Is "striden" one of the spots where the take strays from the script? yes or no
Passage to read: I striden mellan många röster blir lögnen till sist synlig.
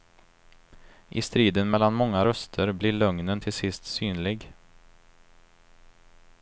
no